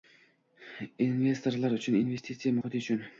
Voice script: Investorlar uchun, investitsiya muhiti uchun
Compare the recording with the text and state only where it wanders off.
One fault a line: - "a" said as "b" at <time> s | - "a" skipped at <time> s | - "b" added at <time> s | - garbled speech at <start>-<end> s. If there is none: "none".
none